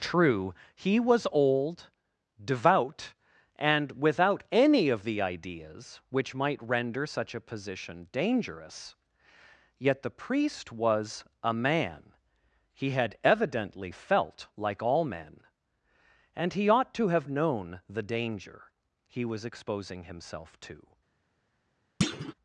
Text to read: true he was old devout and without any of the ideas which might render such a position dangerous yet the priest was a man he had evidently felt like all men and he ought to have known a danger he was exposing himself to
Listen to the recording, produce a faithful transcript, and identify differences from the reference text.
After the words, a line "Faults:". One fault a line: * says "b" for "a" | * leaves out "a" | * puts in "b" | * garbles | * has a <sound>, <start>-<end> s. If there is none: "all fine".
true he was old devout and without any of the ideas which might render such a position dangerous yet the priest was a man he had evidently felt like all men and he ought to have known the danger he was exposing himself to
Faults:
* says "the" for "a"
* has a thud, 22.0-22.3 s